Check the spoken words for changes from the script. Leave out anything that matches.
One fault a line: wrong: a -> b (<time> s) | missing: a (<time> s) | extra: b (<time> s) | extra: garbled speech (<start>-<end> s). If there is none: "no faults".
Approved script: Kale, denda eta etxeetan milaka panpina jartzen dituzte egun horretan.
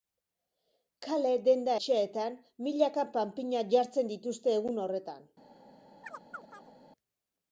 missing: eta (1.8 s)